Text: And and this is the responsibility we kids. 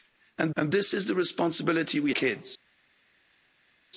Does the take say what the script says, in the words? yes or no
yes